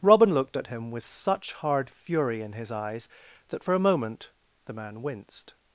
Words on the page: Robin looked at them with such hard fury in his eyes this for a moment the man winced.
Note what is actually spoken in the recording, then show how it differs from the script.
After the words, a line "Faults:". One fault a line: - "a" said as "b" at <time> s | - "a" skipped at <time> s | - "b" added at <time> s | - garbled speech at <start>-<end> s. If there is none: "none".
Robin looked at him with such hard fury in his eyes that for a moment the man winced.
Faults:
- "them" said as "him" at 0.7 s
- "this" said as "that" at 3.5 s